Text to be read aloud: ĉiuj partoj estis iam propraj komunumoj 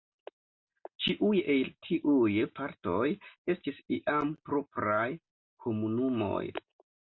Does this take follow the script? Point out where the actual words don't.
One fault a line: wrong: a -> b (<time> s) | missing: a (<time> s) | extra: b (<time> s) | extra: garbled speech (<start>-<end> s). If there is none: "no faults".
extra: el tiuj (1.6 s)